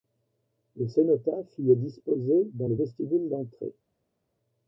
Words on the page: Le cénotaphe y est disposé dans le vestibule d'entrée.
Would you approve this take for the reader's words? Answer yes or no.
yes